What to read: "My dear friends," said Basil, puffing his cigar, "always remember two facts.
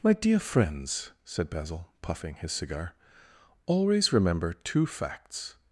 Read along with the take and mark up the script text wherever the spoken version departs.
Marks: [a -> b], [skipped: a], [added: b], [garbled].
"My dear friends," said Basil, puffing his cigar, "always remember two facts.